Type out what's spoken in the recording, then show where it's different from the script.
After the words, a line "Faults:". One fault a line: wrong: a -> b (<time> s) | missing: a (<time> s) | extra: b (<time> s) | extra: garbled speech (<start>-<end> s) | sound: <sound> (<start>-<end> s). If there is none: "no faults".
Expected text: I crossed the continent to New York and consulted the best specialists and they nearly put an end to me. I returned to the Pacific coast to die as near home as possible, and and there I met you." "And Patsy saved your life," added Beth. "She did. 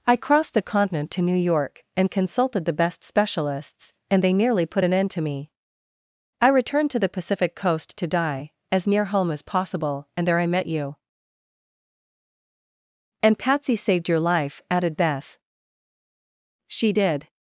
I crossed the continent to New York and consulted the best specialists and they nearly put an end to me. I returned to the Pacific coast to die as near home as possible, and there I met you." "And Patsy saved your life," added Beth. "She did.
Faults:
missing: and (10.3 s)